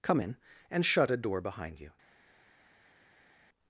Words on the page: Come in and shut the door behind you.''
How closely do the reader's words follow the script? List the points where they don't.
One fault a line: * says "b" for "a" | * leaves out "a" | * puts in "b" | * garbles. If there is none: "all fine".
* says "a" for "the"